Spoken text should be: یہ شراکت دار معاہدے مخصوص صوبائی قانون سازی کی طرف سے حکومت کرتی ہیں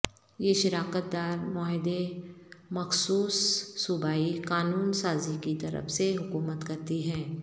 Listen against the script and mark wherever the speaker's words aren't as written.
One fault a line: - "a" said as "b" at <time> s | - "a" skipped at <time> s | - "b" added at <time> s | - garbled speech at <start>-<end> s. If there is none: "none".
none